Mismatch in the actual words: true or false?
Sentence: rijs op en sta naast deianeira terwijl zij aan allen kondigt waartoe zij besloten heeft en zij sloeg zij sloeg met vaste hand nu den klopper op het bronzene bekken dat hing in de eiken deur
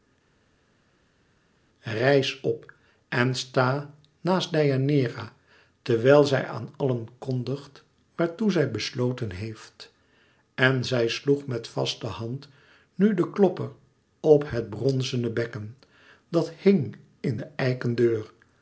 true